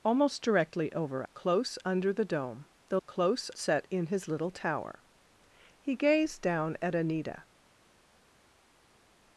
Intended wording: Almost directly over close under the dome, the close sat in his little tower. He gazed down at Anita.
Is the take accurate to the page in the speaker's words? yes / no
yes